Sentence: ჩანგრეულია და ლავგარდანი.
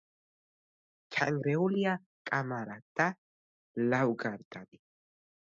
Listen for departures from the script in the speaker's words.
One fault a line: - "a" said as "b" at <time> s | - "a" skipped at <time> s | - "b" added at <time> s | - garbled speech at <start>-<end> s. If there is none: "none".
- "კამარა" added at 2.3 s